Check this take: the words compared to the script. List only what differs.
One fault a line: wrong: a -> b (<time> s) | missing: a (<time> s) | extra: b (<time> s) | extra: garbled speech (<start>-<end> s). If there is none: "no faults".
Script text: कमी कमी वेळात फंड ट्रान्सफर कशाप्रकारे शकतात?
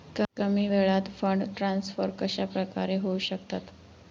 missing: कमी (0.7 s)
extra: होऊ (3.0 s)